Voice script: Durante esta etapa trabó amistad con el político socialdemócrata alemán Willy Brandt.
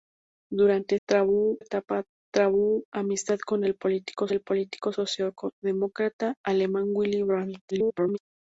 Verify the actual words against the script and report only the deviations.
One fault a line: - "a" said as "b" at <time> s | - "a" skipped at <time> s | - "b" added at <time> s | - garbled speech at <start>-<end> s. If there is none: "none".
- "esta" said as "trabó" at 1.1 s
- "el político" added at 4.3 s
- garbled speech at 7.7-8.2 s